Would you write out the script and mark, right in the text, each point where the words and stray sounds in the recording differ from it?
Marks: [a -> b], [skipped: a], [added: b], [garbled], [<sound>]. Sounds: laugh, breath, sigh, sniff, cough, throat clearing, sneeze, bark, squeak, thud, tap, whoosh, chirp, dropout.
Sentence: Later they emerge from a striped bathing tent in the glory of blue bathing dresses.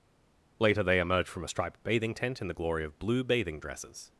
Later they emerge from a striped bathing tent in the glory of blue bathing dresses.